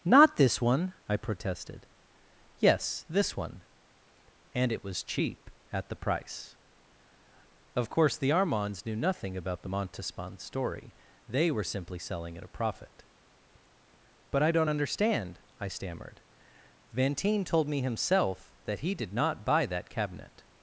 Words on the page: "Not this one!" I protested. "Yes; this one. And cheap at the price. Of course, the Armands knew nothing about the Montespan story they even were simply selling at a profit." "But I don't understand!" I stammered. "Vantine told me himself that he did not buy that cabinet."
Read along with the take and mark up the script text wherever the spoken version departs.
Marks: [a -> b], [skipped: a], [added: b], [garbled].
"Not this one!" I protested. "Yes; this one. And [added: it was] cheap at the price. Of course, the Armands knew nothing about the Montespan story they [skipped: even] were simply selling at a profit." "But I don't understand!" I stammered. "Vantine told me himself that he did not buy that cabinet."